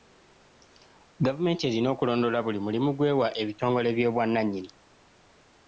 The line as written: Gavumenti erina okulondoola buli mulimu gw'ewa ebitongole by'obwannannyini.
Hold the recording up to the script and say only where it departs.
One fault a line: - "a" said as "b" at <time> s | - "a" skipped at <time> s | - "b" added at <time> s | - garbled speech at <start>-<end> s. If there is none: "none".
none